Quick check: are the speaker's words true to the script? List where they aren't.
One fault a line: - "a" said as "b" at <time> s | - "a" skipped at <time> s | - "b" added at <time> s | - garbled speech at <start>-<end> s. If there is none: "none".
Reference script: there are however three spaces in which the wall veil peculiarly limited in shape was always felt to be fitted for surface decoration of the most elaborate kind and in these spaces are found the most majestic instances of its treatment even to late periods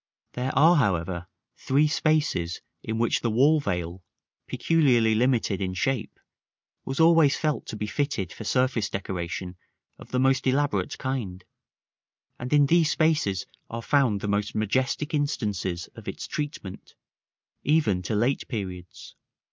none